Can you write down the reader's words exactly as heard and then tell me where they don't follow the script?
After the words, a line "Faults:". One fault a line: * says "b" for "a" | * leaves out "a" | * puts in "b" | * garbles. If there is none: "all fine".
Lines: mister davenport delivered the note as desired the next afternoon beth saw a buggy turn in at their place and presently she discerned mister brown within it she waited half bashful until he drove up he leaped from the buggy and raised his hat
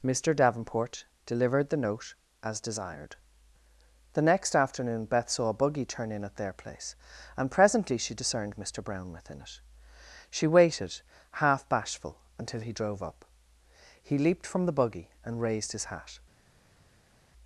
mister davenport delivered the note as desired the next afternoon beth saw a buggy turn in at their place and presently she discerned mister brown within it she waited half bashful until he drove up he leaped from the buggy and raised his hat
Faults:
all fine